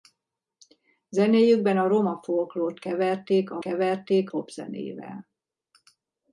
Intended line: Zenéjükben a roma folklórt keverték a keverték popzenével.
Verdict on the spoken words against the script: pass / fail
pass